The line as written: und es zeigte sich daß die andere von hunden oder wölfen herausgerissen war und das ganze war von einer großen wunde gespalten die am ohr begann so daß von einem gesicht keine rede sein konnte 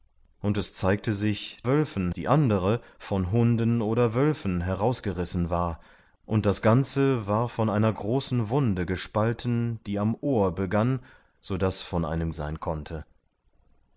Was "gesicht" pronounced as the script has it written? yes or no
no